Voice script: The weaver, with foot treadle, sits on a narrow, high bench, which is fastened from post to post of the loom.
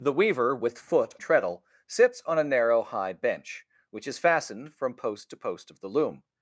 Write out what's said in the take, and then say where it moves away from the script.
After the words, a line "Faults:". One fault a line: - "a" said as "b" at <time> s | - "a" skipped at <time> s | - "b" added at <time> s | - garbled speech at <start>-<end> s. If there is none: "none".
The weaver, with foot treadle, sits on a narrow, high bench, which is fastened from post to post of the loom.
Faults:
none